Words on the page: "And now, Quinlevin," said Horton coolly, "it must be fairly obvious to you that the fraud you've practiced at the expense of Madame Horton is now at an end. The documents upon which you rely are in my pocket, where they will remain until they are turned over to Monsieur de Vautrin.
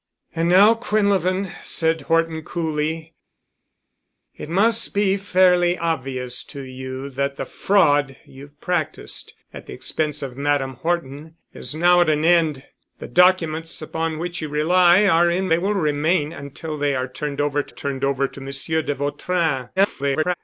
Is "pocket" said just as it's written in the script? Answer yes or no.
no